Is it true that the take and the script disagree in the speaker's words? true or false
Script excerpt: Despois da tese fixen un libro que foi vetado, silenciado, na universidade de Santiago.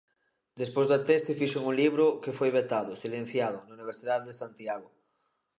false